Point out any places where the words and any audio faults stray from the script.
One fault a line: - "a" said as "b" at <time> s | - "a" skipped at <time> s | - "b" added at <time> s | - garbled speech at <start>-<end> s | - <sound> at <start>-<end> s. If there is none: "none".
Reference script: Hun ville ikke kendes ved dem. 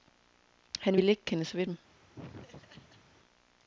- "Hun" said as "Han" at 0.8 s
- laugh at 2.1-3.1 s